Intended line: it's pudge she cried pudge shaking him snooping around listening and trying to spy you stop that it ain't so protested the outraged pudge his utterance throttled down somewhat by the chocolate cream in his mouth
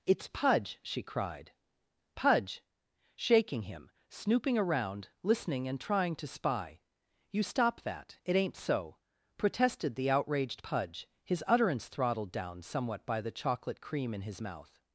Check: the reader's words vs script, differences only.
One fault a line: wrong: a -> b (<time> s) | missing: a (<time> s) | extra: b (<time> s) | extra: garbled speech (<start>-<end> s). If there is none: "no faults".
no faults